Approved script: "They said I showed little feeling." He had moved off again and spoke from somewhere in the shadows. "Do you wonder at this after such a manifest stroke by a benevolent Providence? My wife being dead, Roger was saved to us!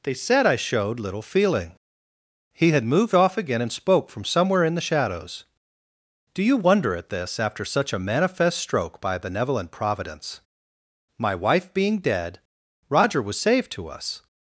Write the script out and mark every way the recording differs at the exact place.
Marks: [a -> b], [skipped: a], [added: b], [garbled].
"They said I showed little feeling." He had moved off again and spoke from somewhere in the shadows. "Do you wonder at this after such a manifest stroke by [skipped: a] benevolent Providence? My wife being dead, Roger was saved to us!